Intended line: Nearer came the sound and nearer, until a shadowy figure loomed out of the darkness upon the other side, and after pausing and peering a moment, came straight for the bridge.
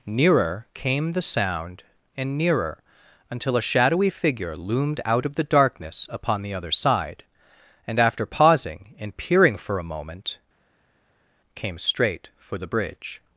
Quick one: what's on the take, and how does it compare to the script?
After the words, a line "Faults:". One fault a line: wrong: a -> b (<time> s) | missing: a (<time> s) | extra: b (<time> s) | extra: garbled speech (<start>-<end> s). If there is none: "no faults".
Nearer came the sound and nearer, until a shadowy figure loomed out of the darkness upon the other side, and after pausing and peering for a moment, came straight for the bridge.
Faults:
extra: for (9.6 s)